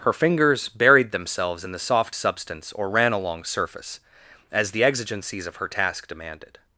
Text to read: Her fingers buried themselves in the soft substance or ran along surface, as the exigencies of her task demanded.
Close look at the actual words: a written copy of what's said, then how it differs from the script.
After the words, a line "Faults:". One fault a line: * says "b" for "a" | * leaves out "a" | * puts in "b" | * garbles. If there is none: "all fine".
Her fingers buried themselves in the soft substance or ran along surface, as the exigencies of her task demanded.
Faults:
all fine